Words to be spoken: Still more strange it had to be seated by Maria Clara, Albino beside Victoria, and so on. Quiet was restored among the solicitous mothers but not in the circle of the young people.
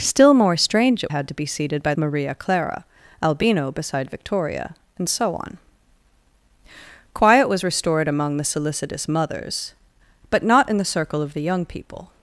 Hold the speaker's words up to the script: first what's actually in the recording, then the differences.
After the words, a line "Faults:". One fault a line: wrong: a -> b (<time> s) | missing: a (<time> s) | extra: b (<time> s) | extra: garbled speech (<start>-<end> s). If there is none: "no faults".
Still more strange it had to be seated by Maria Clara, Albino beside Victoria, and so on. Quiet was restored among the solicitous mothers but not in the circle of the young people.
Faults:
no faults